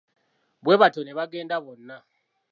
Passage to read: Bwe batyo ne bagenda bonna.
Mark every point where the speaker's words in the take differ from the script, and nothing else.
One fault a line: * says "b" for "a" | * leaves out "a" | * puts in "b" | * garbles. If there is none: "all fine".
all fine